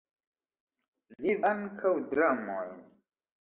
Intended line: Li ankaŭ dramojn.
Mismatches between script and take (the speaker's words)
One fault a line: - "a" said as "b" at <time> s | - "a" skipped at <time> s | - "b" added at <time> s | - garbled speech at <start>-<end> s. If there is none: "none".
none